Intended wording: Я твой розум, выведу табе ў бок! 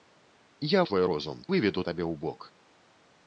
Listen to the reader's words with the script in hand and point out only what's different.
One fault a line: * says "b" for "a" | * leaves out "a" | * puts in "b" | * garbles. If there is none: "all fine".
all fine